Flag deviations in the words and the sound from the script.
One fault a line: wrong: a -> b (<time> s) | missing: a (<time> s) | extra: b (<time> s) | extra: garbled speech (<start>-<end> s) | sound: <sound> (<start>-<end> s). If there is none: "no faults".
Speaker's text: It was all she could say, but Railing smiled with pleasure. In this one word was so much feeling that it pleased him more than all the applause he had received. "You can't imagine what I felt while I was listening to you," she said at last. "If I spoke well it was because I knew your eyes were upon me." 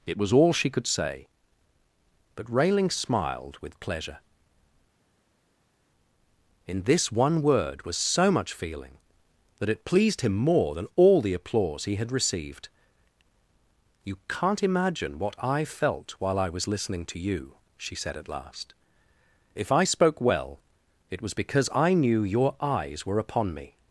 no faults